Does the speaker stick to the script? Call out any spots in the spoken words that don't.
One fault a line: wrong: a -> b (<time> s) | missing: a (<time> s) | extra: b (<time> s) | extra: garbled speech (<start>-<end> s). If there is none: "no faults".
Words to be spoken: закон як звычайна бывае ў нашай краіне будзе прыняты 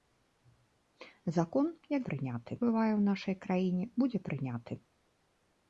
wrong: звычайна -> прыняты (2.1 s)